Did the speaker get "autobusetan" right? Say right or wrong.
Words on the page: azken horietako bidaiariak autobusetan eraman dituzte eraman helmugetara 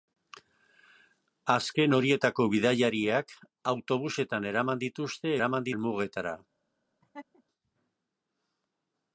right